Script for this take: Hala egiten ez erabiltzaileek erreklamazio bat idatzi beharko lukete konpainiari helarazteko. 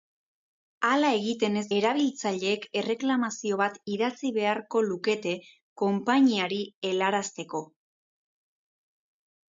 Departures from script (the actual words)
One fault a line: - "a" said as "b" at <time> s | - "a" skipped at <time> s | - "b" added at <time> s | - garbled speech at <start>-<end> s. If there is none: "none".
none